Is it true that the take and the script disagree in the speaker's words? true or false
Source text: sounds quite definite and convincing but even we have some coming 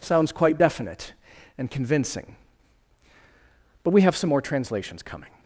true